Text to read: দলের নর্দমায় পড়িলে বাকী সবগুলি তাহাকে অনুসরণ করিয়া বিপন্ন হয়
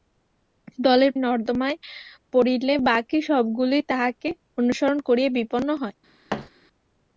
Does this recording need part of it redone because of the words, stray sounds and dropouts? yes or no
yes